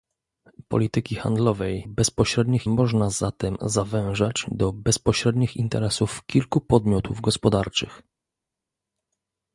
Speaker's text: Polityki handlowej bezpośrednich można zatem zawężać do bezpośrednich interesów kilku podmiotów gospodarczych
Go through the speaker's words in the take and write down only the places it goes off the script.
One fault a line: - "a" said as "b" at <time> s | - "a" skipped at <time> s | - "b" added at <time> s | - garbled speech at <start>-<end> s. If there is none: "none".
none